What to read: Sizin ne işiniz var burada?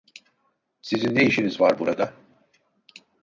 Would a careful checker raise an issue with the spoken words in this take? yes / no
no